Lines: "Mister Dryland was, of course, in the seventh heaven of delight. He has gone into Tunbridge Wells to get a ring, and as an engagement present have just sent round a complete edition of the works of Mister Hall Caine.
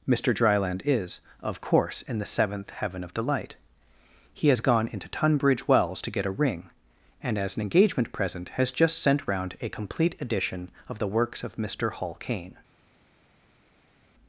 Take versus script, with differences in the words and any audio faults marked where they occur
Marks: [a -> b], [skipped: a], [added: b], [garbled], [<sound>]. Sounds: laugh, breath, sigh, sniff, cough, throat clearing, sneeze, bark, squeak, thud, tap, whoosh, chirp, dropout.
"Mister Dryland [was, -> is] of course, in the seventh heaven of delight. He has gone into Tunbridge Wells to get a ring, and as an engagement present [have -> has] just sent round a complete edition of the works of Mister Hall Caine.